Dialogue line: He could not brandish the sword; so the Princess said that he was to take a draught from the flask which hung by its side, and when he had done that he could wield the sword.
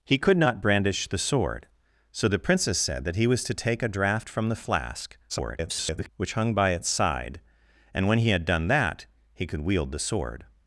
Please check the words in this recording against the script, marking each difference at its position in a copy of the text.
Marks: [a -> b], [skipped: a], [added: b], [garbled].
He could not brandish the sword; so the Princess said that he was to take a draught from the flask [garbled] which hung by its side, and when he had done that he could wield the sword.